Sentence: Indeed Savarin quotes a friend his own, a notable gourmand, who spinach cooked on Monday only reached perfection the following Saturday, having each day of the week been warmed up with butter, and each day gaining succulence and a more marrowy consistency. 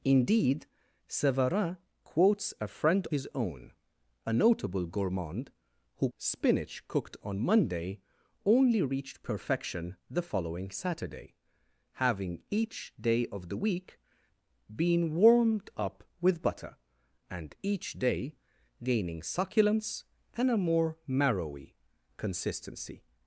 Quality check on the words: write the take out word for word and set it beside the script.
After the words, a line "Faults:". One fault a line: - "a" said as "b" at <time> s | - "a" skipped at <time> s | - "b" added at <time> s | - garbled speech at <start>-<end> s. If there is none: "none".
Indeed Savarin quotes a friend his own, a notable gourmand, who spinach cooked on Monday only reached perfection the following Saturday, having each day of the week been warmed up with butter, and each day gaining succulence and a more marrowy consistency.
Faults:
none